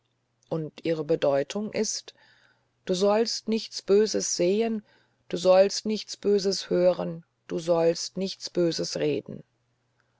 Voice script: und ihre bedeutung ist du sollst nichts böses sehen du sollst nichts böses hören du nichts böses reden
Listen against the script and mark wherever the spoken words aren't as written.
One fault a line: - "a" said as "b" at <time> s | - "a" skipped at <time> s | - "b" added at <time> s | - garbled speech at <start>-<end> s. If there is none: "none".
- "sollst" added at 7.6 s